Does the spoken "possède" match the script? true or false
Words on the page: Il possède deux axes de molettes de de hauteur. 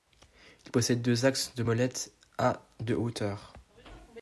true